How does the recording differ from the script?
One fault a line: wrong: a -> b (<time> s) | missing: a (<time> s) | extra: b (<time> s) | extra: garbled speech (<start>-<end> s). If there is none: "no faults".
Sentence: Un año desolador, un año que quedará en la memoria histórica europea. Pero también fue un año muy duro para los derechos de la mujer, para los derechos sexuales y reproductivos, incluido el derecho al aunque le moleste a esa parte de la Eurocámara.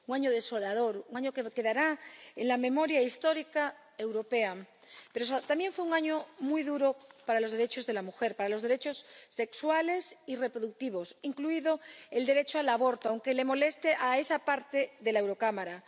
extra: aborto (12.7 s)